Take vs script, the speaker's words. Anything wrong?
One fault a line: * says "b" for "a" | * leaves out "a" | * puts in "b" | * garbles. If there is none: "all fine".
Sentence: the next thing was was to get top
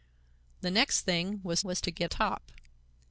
all fine